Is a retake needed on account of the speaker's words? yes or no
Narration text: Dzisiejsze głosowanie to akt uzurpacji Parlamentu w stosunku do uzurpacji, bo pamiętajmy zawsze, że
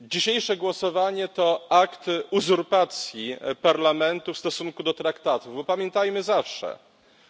yes